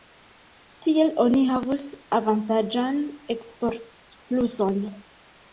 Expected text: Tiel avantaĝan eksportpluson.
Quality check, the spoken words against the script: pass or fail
fail